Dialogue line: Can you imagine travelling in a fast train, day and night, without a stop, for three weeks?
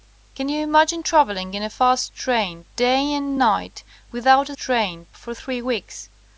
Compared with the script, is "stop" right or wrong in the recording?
wrong